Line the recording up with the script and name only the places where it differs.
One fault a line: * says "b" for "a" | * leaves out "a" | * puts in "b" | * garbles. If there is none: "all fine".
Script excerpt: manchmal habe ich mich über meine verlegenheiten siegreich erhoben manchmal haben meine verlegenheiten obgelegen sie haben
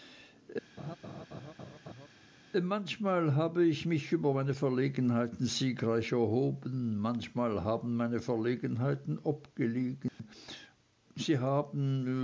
all fine